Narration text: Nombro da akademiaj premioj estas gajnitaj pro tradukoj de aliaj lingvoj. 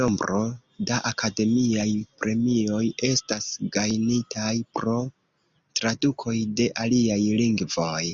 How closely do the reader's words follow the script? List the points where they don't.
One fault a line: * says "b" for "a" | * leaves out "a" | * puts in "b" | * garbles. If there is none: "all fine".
all fine